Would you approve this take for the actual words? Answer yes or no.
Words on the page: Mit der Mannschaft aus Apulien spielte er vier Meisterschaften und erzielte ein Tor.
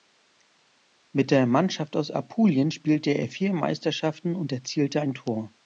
yes